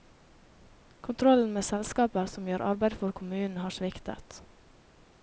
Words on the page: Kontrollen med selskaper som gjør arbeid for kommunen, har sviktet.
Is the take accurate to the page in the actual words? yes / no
yes